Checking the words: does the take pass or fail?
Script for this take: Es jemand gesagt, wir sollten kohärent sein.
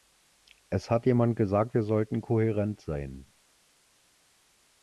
fail